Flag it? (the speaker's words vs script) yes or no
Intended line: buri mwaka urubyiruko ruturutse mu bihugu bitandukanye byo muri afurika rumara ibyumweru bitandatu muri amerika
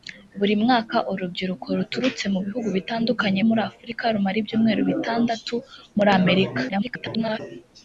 yes